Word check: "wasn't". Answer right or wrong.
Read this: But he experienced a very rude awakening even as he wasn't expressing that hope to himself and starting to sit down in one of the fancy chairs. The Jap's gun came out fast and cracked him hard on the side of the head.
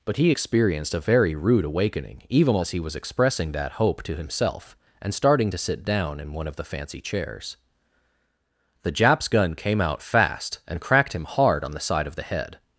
wrong